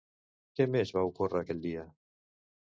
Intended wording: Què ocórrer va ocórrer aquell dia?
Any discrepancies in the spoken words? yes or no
yes